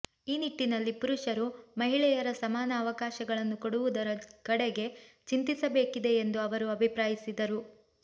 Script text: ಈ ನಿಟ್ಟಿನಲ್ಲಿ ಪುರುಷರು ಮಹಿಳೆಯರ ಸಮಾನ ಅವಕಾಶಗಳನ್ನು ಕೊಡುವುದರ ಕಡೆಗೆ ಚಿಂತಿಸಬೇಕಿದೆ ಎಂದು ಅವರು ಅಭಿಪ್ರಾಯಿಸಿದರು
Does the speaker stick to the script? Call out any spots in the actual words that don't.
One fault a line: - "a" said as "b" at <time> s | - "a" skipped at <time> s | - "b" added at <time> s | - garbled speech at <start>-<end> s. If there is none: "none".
none